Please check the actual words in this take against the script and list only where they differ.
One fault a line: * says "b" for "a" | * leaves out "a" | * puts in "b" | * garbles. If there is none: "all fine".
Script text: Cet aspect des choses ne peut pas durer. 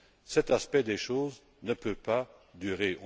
all fine